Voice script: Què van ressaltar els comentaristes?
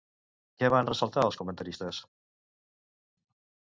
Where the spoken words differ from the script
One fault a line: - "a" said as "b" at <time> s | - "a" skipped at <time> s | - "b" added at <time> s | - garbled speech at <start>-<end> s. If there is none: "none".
none